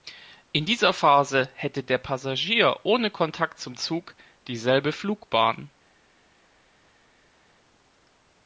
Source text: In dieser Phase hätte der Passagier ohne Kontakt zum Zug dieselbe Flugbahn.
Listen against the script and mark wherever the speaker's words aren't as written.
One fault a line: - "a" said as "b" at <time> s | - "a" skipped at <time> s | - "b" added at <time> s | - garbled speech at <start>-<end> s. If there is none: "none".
none